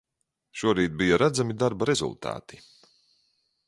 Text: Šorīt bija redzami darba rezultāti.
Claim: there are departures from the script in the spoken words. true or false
false